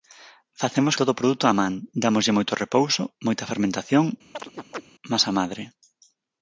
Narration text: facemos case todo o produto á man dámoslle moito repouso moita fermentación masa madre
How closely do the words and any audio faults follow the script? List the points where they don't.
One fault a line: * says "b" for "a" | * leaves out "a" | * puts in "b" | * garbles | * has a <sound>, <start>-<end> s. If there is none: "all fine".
* leaves out "case"
* has a chirp, 4.3-4.8 s